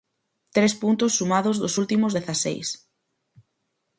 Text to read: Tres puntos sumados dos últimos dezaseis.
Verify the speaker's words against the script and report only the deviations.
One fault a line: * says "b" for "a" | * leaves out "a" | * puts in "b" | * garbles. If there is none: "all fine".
all fine